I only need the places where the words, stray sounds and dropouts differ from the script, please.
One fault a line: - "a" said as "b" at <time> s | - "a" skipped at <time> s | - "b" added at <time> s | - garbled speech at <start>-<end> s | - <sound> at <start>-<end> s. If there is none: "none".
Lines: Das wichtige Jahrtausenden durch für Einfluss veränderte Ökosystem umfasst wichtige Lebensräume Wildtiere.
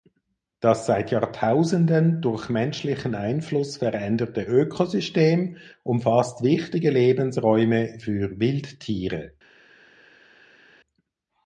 - "wichtige" said as "seit" at 0.9 s
- "für" said as "menschlichen" at 2.5 s
- "für" added at 8.0 s